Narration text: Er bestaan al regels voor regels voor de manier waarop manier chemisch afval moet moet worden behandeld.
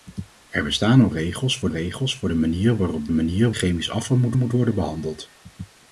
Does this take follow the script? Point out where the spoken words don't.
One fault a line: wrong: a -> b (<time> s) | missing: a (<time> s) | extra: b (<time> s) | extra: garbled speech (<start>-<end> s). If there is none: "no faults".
no faults